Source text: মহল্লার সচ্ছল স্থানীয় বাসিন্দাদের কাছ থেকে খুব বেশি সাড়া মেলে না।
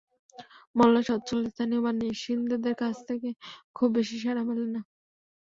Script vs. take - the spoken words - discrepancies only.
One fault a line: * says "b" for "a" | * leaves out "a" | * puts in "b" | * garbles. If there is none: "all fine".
all fine